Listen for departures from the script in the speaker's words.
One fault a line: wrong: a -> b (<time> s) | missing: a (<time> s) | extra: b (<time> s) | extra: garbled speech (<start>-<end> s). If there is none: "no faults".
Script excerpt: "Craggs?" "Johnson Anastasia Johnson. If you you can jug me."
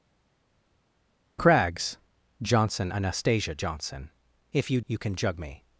no faults